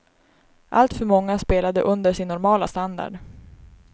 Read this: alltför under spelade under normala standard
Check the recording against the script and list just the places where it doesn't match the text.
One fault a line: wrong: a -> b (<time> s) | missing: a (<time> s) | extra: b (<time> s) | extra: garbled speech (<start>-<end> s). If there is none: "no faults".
wrong: under -> många (1.1 s)
extra: sin (2.1 s)